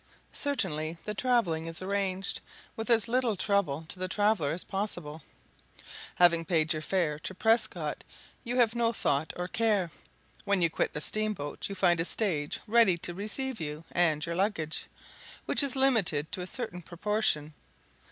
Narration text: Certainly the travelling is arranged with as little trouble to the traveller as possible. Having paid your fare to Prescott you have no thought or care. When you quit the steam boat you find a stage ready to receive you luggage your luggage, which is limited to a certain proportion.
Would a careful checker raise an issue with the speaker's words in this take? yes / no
yes